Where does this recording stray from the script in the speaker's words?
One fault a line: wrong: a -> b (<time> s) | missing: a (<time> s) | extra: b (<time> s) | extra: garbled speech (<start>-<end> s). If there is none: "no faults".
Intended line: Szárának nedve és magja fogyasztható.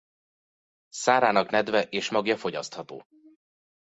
no faults